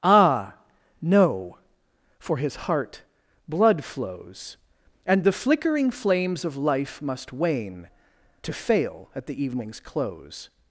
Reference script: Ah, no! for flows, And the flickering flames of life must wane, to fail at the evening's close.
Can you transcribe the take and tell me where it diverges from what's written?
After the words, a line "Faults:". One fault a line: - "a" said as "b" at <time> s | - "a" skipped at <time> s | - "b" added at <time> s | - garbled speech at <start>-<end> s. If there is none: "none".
Ah, no! for his heart blood flows, And the flickering flames of life must wane, to fail at the evening's close.
Faults:
- "his heart blood" added at 2.4 s